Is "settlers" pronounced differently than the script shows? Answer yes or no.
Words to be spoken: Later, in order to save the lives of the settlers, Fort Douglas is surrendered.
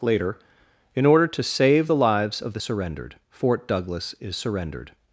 yes